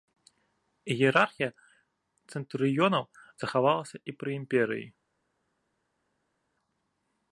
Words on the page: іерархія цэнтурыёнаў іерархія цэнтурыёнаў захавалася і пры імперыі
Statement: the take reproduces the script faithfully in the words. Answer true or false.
false